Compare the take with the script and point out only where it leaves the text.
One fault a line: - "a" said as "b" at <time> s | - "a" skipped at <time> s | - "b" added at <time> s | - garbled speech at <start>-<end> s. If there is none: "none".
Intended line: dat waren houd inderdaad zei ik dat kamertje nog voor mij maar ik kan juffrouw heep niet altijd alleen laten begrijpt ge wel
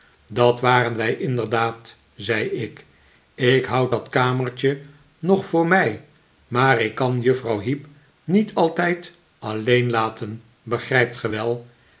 - "houd" said as "wij" at 1.0 s
- "ik houd" added at 3.4 s